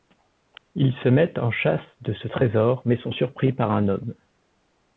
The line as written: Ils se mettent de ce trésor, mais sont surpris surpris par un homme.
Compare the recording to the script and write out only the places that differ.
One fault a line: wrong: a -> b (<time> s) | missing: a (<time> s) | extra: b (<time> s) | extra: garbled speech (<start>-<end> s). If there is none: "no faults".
extra: en chasse (1.4 s)
missing: surpris (3.5 s)